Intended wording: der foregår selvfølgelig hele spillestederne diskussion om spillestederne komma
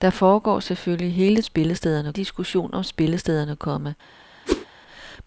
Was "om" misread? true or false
false